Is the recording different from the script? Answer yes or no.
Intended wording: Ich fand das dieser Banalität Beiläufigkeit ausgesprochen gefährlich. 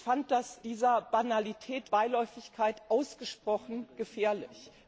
no